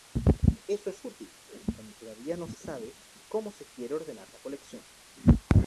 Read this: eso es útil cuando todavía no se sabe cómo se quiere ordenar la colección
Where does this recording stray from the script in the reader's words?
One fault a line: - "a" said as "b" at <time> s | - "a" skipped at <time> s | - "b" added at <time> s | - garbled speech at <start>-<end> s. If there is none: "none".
none